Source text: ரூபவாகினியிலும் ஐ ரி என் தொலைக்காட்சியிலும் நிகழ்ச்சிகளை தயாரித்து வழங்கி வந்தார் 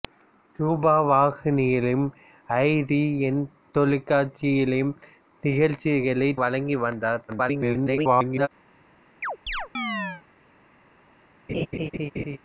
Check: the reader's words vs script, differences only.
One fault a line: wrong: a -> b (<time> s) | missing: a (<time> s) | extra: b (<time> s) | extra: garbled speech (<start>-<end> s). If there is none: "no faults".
missing: தயாரித்து (6.3 s)
extra: garbled speech (7.3-8.5 s)